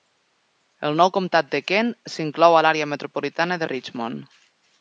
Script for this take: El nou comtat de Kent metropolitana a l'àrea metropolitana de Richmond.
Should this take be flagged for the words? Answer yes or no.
yes